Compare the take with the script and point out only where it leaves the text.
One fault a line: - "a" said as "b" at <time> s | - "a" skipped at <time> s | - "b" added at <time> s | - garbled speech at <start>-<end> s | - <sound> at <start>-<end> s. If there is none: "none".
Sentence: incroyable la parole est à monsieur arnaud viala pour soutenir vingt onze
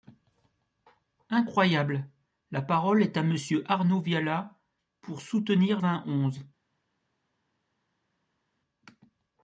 none